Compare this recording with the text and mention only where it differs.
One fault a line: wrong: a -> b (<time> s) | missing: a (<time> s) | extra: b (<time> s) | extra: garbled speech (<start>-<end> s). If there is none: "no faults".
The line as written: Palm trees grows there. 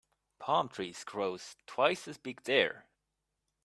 extra: twice as big (1.7 s)